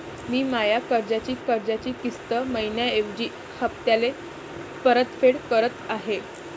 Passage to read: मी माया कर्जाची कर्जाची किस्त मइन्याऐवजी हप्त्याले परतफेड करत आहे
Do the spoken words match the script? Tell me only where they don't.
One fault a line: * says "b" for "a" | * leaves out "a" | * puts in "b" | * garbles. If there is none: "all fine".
all fine